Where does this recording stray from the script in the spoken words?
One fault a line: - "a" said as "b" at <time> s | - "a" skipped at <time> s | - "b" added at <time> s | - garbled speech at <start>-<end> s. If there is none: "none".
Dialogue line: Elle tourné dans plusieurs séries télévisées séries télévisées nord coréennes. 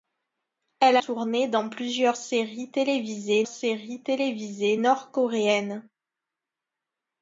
none